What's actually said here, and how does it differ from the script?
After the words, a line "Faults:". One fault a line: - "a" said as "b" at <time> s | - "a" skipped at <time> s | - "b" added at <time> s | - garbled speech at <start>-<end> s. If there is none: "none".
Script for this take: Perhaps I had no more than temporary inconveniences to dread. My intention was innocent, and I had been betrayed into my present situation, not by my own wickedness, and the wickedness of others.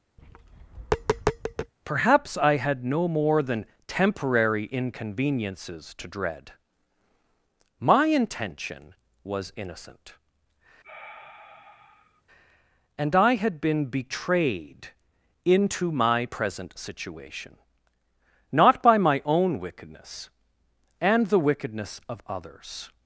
Perhaps I had no more than temporary inconveniences to dread. My intention was innocent, and I had been betrayed into my present situation, not by my own wickedness, and the wickedness of others.
Faults:
none